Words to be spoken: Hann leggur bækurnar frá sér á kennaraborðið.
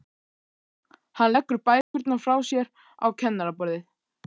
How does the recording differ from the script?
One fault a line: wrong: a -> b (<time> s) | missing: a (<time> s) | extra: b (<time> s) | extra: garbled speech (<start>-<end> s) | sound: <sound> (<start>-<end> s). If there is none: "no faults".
sound: dropout (1.8-1.9 s)